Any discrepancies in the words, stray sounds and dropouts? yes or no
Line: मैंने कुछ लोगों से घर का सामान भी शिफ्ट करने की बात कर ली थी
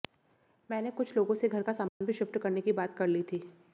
yes